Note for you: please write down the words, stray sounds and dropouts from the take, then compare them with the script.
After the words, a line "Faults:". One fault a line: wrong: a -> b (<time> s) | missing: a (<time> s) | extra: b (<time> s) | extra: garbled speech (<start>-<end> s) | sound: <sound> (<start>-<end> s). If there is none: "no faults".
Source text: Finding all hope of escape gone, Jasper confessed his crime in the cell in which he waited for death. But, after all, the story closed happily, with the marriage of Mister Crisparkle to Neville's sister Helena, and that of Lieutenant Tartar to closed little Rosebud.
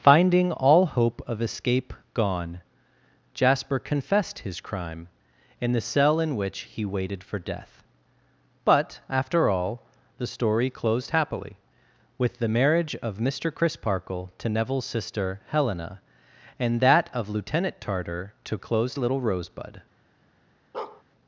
Finding all hope of escape gone, Jasper confessed his crime in the cell in which he waited for death. But, after all, the story closed happily, with the marriage of Mister Crisparkle to Neville's sister Helena, and that of Lieutenant Tartar to closed little Rosebud.
Faults:
sound: bark (20.7-21.0 s)